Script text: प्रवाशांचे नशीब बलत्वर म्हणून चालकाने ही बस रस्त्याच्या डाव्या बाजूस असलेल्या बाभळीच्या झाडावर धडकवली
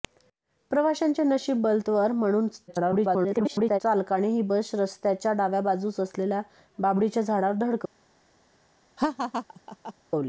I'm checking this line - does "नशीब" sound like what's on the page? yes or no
yes